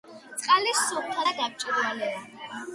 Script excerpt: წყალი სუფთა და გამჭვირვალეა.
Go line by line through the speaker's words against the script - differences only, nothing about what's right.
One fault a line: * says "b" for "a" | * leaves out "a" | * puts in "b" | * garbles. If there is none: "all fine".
all fine